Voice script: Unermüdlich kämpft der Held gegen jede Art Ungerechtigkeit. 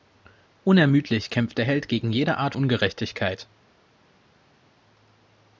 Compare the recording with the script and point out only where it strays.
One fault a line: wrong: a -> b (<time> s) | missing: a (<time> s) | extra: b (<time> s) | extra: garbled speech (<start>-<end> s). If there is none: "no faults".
no faults